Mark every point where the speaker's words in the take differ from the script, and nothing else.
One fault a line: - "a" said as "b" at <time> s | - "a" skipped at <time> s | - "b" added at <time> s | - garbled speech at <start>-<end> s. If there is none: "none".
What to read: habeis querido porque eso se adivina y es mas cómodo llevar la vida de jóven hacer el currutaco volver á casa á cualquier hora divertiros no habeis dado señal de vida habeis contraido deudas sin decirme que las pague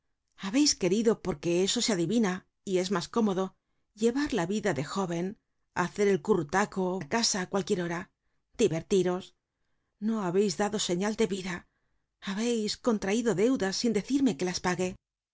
- "volver" skipped at 6.8 s